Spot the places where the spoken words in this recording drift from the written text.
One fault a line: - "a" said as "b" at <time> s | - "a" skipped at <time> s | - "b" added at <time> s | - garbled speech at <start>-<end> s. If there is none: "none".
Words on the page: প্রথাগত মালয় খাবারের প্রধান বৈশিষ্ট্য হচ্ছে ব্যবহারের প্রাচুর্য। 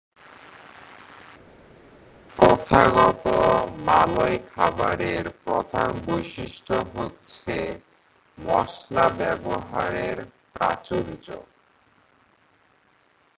- "মশলা" added at 8.4 s